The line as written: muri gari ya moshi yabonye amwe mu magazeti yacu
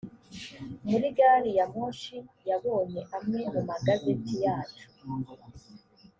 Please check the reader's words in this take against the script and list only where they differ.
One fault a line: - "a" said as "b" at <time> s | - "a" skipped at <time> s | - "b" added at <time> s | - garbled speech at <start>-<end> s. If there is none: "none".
none